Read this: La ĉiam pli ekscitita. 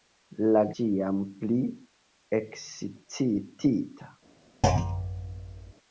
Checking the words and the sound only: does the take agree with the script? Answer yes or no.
no